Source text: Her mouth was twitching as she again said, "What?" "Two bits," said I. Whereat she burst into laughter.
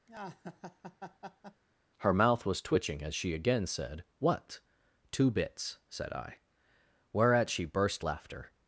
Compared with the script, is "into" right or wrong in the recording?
wrong